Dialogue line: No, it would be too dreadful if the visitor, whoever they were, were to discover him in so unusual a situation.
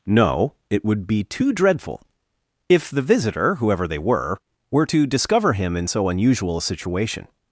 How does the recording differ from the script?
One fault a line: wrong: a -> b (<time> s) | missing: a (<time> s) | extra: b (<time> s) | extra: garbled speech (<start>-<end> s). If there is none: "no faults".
no faults